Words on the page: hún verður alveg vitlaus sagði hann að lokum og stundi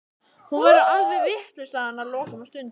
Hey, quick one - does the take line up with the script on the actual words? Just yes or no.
yes